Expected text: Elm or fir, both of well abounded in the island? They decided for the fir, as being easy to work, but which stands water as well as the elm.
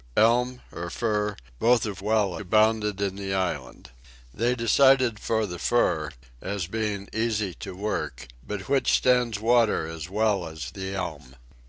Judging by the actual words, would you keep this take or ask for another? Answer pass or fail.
pass